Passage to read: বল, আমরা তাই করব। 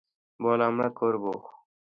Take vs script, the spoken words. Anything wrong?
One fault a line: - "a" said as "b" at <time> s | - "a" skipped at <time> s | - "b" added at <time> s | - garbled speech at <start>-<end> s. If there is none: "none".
- "তাই" skipped at 0.9 s